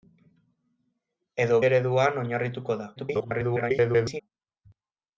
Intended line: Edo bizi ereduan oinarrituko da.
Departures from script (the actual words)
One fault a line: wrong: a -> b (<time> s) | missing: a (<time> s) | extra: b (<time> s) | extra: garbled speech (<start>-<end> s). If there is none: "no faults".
missing: bizi (1.6 s)
extra: garbled speech (3.0-4.2 s)